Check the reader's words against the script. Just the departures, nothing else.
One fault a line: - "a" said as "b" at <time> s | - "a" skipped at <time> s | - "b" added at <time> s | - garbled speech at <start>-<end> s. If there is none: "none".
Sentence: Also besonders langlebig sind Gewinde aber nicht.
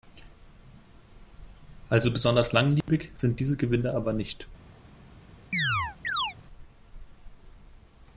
- "diese" added at 3.4 s